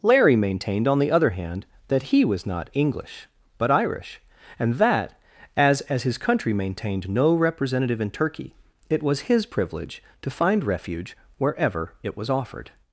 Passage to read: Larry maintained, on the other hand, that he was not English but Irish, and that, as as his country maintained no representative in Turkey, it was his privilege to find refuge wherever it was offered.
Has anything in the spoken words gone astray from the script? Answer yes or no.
no